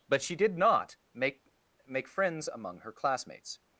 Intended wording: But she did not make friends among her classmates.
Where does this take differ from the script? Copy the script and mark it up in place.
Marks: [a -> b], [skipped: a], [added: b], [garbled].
But she did not make [added: make] friends among her classmates.